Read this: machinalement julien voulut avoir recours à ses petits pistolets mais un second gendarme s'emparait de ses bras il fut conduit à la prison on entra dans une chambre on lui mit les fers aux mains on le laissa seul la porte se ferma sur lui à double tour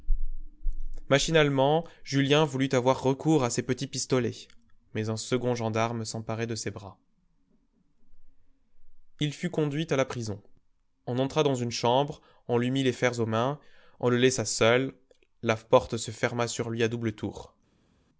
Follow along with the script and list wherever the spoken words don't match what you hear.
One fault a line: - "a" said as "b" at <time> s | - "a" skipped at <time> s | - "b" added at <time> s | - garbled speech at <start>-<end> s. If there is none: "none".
none